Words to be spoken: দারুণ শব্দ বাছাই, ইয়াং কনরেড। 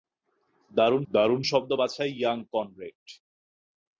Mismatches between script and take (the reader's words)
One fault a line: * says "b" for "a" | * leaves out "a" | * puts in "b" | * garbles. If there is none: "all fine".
* puts in "দারুণ"